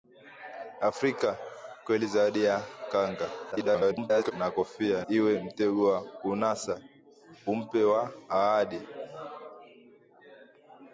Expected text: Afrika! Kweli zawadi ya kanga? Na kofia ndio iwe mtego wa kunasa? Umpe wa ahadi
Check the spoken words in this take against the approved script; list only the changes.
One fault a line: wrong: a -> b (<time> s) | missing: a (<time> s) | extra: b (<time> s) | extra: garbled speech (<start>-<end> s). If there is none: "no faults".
extra: garbled speech (3.5-4.3 s)
missing: ndio (5.0 s)